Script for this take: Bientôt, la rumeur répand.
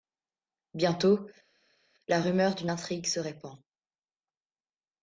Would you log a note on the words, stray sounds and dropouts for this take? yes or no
yes